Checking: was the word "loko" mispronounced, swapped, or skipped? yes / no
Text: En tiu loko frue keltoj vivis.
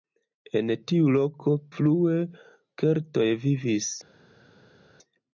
no